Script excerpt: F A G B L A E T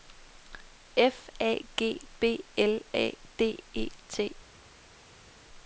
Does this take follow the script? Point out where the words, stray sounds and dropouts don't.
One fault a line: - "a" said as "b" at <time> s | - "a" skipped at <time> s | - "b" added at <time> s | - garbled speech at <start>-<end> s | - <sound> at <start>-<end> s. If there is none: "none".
- "D" added at 3.4 s